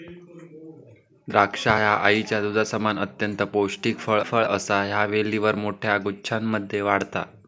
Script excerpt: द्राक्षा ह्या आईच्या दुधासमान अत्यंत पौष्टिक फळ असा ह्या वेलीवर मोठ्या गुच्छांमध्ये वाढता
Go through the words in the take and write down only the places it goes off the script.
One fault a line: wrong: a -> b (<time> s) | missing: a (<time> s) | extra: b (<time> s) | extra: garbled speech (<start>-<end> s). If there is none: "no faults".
extra: फळ (4.2 s)